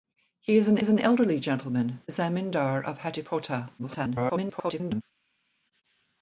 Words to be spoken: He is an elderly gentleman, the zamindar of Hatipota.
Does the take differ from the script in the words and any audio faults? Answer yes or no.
yes